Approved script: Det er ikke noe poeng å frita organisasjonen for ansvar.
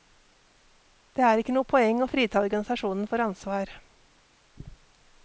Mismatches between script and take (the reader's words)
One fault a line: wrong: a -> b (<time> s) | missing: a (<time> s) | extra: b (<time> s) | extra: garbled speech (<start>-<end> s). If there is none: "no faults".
no faults